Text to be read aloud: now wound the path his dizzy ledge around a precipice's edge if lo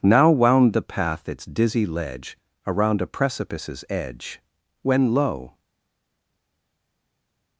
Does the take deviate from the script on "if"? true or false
true